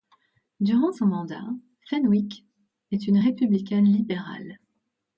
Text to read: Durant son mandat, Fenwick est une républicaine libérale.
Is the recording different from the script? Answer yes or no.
no